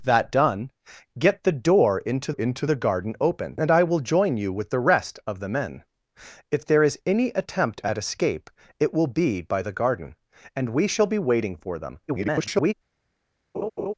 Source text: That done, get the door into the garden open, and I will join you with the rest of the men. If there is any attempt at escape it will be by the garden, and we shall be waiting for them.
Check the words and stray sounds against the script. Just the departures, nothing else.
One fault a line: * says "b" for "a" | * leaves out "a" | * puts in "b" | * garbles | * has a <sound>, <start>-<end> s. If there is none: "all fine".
* puts in "into"
* garbles
* has a laugh, 13.5-13.9 s